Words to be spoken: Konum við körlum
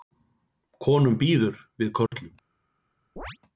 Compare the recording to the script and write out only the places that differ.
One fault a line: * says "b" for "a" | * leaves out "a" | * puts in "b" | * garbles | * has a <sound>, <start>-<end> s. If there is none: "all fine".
* puts in "býður"
* has a dropout, 2.1-2.1 s
* has a chirp, 3.2-3.4 s